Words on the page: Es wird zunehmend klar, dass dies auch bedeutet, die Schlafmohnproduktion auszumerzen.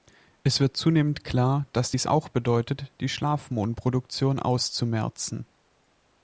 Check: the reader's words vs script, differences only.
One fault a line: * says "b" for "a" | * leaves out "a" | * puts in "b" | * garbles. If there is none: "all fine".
all fine